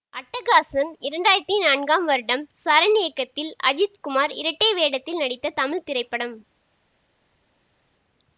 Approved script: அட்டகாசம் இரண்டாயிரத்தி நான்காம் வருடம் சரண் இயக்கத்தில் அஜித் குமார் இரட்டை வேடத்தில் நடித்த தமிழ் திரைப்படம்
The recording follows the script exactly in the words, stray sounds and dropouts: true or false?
true